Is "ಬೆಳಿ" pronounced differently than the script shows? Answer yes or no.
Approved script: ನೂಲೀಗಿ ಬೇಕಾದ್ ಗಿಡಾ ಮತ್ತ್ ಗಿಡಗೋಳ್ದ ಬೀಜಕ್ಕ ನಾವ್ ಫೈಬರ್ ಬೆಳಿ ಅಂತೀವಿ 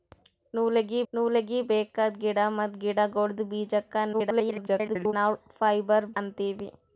yes